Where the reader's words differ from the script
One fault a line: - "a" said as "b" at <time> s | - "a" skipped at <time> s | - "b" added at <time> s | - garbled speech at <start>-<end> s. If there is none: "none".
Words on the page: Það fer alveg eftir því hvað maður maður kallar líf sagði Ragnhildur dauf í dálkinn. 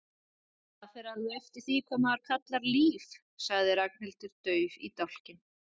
- "maður" skipped at 2.2 s